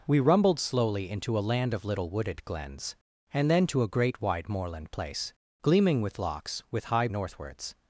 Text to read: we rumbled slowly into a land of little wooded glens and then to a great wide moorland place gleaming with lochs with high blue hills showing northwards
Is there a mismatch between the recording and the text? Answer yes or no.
yes